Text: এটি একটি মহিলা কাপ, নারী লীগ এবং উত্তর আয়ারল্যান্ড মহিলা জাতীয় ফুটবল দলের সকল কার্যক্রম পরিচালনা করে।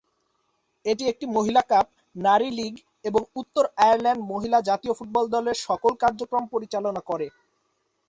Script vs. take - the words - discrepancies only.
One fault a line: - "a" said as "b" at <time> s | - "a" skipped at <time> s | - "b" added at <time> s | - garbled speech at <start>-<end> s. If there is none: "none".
none